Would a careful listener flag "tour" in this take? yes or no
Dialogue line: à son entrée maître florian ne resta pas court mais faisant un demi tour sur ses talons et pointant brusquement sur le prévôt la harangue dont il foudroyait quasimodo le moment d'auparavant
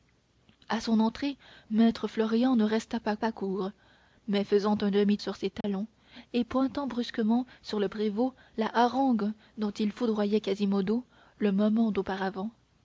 yes